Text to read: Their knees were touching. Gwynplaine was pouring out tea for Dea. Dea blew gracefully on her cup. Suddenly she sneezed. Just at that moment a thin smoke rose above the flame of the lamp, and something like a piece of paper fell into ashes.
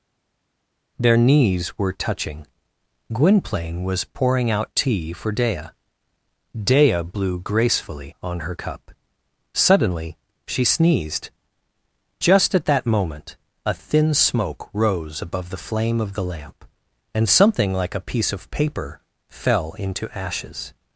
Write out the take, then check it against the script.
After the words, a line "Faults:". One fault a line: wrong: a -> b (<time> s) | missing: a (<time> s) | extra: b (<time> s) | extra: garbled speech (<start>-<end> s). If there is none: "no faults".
Their knees were touching. Gwynplaine was pouring out tea for Dea. Dea blew gracefully on her cup. Suddenly she sneezed. Just at that moment a thin smoke rose above the flame of the lamp, and something like a piece of paper fell into ashes.
Faults:
no faults